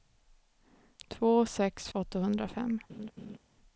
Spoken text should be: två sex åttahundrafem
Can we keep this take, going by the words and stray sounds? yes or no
no